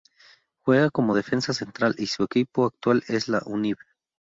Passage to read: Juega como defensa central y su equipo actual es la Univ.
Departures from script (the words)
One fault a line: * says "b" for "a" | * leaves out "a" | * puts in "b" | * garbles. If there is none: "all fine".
all fine